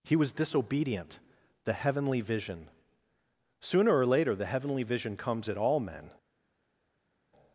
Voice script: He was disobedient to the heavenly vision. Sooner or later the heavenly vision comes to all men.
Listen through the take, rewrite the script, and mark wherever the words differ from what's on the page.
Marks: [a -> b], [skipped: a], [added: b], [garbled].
He was disobedient [skipped: to] the heavenly vision. Sooner or later the heavenly vision comes [to -> at] all men.